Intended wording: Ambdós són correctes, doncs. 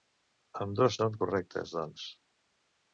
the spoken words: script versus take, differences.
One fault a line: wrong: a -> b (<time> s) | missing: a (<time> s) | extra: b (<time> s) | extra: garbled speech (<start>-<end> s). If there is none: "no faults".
no faults